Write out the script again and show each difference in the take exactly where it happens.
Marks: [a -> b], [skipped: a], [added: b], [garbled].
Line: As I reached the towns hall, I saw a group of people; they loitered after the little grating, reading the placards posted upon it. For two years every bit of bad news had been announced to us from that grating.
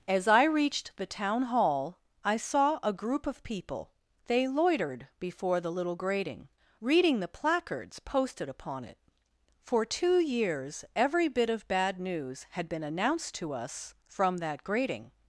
As I reached the [towns -> town] hall, I saw a group of people; they loitered [after -> before] the little grating, reading the placards posted upon it. For two years every bit of bad news had been announced to us from that grating.